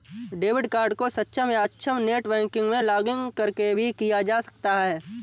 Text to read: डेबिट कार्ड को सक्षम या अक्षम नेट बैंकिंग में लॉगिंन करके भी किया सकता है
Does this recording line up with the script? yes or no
no